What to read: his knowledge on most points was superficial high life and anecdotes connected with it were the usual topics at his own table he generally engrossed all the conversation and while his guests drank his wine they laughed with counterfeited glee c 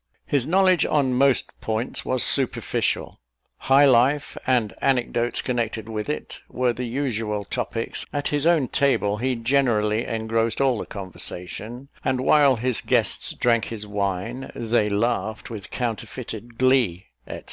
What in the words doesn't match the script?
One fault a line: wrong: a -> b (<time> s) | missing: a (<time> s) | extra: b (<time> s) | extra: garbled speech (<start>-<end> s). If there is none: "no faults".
no faults